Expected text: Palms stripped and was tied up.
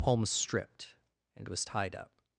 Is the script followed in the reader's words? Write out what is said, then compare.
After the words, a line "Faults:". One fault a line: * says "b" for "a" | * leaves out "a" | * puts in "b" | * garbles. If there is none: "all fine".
Palms stripped and was tied up.
Faults:
all fine